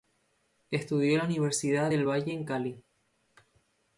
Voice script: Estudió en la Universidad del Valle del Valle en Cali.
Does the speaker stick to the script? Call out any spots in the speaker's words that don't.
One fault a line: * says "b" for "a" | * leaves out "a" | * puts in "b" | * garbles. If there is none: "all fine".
* leaves out "del Valle"